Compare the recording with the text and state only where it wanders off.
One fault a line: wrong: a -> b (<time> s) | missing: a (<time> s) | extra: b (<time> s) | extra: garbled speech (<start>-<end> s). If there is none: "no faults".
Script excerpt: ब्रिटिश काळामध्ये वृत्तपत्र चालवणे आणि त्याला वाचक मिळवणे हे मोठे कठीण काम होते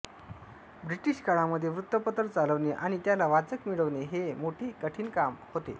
no faults